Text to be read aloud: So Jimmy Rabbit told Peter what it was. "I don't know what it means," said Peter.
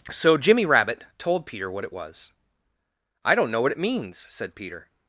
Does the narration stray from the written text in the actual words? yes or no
no